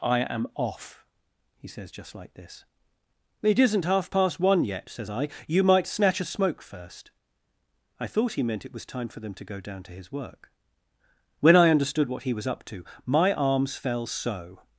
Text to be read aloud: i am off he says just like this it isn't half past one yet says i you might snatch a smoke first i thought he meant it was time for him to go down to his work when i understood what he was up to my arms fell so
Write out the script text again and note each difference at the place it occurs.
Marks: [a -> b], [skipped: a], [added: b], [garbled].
i am off he says just like this it isn't half past one yet says i you might snatch a smoke first i thought he meant it was time for [him -> them] to go down to his work when i understood what he was up to my arms fell so